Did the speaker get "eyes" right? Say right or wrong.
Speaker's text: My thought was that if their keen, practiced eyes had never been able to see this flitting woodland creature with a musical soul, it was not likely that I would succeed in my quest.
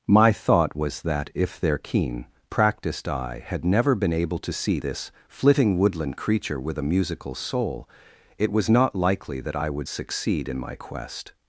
wrong